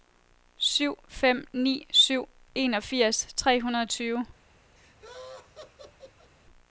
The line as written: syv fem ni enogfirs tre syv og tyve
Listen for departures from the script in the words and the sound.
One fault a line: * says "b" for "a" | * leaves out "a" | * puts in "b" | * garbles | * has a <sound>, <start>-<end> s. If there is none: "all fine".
* puts in "syv"
* says "hundrede" for "syv"
* has a laugh, 4.8-6.3 s